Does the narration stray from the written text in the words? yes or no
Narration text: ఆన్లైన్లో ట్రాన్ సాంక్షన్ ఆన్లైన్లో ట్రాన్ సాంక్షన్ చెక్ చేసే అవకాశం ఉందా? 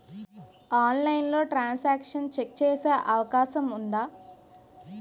yes